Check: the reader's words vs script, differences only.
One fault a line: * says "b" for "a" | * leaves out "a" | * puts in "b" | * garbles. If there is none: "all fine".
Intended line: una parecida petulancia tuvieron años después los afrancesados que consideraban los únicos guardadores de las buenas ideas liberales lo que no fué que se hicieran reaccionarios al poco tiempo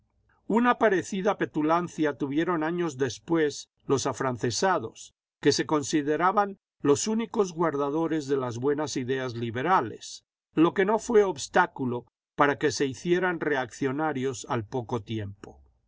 * puts in "se"
* puts in "obstáculo para"